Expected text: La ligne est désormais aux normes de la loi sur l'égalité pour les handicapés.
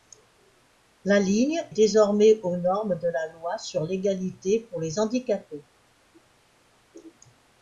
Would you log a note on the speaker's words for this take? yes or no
yes